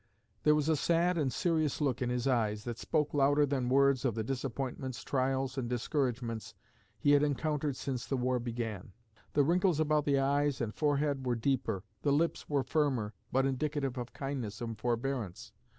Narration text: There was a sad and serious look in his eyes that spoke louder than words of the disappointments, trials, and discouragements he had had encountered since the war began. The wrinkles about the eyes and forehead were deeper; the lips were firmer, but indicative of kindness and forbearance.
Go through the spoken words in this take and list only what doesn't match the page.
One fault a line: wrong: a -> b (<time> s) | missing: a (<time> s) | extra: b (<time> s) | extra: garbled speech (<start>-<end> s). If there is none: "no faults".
missing: had (7.2 s)